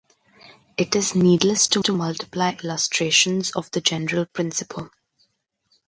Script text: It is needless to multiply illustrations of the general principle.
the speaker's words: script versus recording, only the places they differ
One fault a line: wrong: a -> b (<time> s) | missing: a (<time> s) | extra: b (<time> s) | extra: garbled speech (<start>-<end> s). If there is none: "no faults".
extra: to (1.8 s)